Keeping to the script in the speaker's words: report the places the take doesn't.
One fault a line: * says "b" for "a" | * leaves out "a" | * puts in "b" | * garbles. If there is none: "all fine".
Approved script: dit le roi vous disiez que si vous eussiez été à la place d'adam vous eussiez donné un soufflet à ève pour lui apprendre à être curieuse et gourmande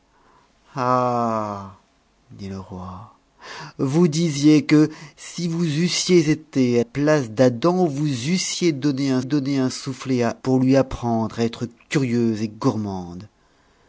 * leaves out "la"
* puts in "donné un"
* leaves out "ève"